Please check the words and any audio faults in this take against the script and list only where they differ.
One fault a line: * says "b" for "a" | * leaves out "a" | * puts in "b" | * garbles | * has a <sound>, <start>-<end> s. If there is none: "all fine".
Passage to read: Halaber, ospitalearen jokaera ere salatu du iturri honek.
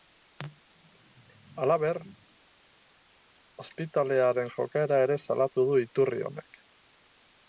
all fine